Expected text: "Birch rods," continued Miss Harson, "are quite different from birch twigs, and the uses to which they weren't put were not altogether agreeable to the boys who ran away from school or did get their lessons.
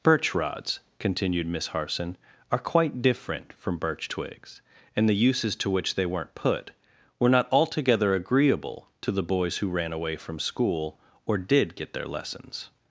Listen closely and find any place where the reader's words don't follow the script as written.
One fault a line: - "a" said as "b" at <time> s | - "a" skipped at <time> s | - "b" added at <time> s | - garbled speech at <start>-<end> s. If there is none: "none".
none